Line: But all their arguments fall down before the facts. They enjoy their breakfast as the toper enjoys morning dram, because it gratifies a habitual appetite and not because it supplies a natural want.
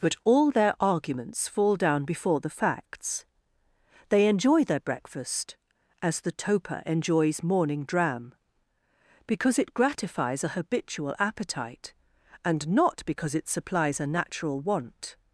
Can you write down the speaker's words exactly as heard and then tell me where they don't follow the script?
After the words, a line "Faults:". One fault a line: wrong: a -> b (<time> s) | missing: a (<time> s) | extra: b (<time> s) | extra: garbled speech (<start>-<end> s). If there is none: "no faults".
But all their arguments fall down before the facts. They enjoy their breakfast as the toper enjoys morning dram, because it gratifies a habitual appetite and not because it supplies a natural want.
Faults:
no faults